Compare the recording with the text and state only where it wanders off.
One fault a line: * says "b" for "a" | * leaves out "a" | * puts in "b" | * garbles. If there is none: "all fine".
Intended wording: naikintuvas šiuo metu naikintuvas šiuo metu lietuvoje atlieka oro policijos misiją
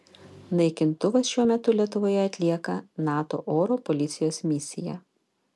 * leaves out "naikintuvas šiuo metu"
* puts in "nato"